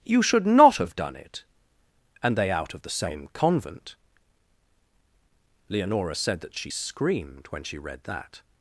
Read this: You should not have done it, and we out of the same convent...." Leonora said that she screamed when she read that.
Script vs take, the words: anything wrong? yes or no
yes